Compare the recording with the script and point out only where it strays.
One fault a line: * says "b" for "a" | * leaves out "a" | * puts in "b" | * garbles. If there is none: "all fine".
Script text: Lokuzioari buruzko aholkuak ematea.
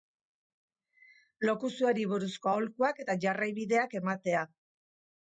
* puts in "eta jarraibideak"